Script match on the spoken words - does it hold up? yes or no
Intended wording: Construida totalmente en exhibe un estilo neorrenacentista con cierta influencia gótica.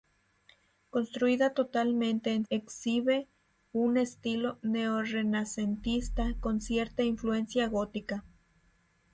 yes